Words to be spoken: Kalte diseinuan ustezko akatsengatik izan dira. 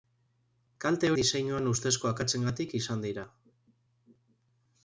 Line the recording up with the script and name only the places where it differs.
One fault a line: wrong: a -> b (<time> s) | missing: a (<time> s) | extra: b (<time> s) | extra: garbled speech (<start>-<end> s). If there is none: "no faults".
no faults